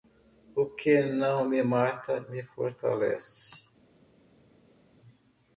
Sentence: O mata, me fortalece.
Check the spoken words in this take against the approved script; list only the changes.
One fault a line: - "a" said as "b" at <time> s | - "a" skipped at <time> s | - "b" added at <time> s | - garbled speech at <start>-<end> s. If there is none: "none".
- "que não me" added at 0.7 s